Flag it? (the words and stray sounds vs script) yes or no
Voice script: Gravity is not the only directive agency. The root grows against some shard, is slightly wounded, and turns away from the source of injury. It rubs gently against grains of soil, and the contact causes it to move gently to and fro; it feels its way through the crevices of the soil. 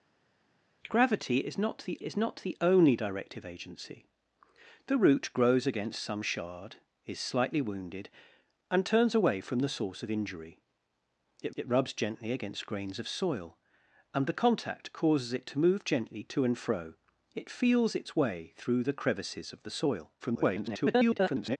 yes